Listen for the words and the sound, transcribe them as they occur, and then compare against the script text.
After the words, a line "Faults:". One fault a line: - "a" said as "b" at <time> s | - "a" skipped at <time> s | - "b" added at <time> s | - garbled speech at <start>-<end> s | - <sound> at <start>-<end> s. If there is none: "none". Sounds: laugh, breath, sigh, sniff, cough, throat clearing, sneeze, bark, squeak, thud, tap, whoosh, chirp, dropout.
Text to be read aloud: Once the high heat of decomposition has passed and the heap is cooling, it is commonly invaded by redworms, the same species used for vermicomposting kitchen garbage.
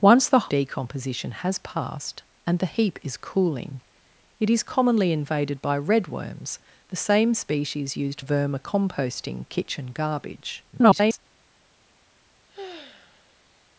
Once the decomposition has passed and the heap is cooling, it is commonly invaded by redworms, the same species used vermicomposting kitchen garbage. [garbled]
Faults:
- "high heat of" skipped at 0.5 s
- "for" skipped at 8.2 s
- garbled speech at 10.7-11.2 s
- sigh at 12.5-13.7 s